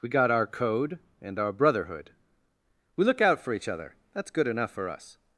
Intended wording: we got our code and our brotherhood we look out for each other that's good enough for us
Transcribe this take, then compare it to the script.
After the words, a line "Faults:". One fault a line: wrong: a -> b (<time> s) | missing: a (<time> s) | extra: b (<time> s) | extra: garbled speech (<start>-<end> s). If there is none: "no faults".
we got our code and our brotherhood we look out for each other that's good enough for us
Faults:
no faults